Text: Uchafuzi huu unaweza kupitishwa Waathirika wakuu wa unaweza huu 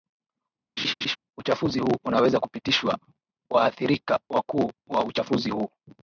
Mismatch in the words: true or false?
true